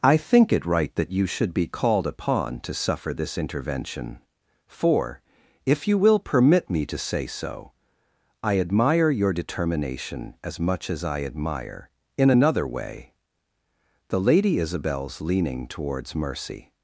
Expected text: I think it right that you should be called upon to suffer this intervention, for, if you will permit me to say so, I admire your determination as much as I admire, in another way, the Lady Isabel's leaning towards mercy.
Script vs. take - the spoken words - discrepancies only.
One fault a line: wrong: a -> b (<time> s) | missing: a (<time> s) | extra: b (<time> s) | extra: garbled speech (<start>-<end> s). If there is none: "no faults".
no faults